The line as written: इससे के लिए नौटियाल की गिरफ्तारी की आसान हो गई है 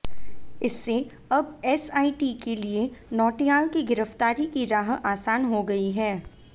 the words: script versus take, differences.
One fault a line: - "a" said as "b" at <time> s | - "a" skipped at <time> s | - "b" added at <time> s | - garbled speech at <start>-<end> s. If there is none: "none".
- "अब एसआईटी" added at 1.3 s
- "राह" added at 4.7 s